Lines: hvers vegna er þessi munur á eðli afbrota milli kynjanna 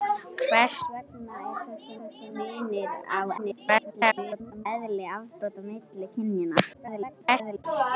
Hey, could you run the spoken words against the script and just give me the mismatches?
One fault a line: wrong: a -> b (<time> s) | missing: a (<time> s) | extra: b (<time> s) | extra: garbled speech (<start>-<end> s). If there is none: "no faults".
extra: þessi (2.0 s)
extra: garbled speech (3.4-4.7 s)
extra: garbled speech (6.7-7.6 s)